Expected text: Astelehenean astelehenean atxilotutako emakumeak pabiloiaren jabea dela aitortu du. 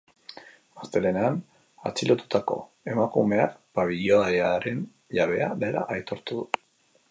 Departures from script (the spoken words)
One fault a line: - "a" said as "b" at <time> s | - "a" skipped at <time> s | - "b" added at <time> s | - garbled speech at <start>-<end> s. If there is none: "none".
- "astelehenean" skipped at 1.4 s